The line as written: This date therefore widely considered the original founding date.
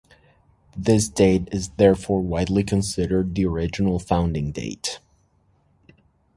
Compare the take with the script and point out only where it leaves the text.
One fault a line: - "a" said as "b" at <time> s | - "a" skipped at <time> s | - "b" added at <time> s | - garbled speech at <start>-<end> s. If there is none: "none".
- "is" added at 1.5 s